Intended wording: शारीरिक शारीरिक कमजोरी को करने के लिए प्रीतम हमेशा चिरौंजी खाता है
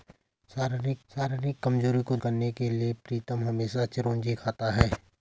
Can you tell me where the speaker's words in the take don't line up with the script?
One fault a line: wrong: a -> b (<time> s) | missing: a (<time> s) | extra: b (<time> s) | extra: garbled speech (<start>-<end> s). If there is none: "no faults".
no faults